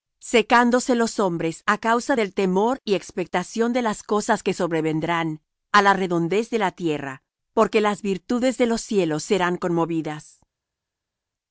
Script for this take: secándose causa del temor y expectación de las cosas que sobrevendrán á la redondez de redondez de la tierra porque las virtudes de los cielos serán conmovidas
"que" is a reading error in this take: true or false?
false